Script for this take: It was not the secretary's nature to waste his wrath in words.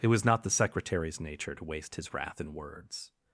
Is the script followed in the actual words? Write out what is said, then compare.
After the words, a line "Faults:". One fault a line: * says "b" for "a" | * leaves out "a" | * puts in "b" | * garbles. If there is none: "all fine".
It was not the secretary's nature to waste his wrath in words.
Faults:
all fine